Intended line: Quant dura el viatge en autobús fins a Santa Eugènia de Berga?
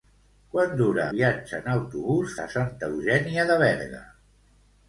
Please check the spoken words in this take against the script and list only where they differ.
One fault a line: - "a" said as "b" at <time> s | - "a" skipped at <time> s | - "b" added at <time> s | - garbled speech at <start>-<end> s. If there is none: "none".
- "el" skipped at 1.0 s
- "fins" skipped at 2.3 s